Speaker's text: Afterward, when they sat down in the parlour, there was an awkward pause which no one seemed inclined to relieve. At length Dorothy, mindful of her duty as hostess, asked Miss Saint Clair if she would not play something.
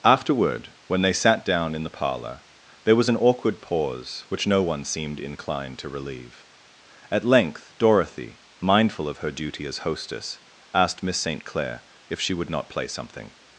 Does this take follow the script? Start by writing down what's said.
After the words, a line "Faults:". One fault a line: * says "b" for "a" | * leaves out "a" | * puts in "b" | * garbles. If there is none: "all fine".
Afterward, when they sat down in the parlour, there was an awkward pause which no one seemed inclined to relieve. At length Dorothy, mindful of her duty as hostess, asked Miss Saint Clair if she would not play something.
Faults:
all fine